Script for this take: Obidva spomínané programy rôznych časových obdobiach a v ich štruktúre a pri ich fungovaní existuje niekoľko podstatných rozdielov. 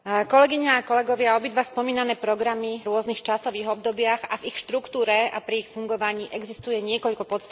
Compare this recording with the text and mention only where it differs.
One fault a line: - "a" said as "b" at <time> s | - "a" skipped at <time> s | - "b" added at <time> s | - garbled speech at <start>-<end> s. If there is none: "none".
none